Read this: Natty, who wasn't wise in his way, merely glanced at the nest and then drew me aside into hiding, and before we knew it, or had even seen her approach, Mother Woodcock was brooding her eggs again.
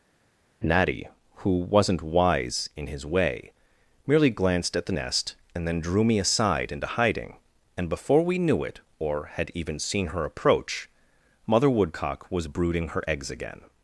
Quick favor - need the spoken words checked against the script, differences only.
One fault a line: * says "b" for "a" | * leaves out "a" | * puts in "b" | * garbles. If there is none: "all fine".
all fine